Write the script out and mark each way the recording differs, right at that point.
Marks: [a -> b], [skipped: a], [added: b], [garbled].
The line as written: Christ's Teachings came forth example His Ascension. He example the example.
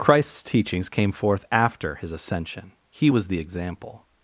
Christ's Teachings came forth [example -> after] His Ascension. He [example -> was] the example.